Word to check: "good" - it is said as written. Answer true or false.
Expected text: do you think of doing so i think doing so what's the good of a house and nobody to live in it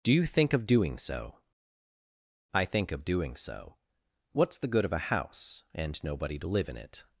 true